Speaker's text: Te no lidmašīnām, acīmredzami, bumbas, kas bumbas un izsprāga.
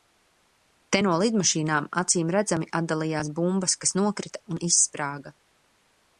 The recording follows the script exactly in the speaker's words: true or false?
false